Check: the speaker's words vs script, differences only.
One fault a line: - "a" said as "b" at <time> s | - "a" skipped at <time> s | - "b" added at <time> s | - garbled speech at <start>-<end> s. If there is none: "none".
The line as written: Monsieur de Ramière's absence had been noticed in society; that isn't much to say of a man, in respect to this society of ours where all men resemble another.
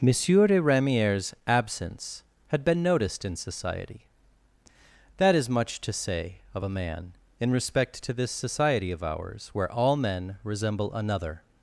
- "isn't" said as "is" at 5.3 s